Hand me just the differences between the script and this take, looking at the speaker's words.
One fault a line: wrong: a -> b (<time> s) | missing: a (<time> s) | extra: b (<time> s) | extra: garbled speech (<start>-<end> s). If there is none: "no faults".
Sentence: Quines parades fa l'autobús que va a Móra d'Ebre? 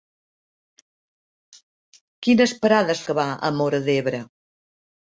missing: fa l'autobús (3.0 s)